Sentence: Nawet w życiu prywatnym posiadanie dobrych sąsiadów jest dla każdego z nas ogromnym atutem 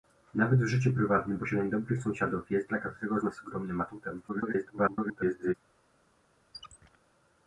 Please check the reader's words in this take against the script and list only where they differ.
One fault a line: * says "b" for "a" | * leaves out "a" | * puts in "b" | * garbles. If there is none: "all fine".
* garbles